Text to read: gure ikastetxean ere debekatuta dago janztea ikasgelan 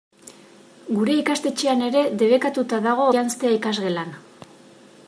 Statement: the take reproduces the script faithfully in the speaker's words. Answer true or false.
true